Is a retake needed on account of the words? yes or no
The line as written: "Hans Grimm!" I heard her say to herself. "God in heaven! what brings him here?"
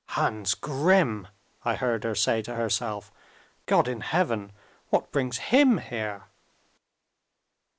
no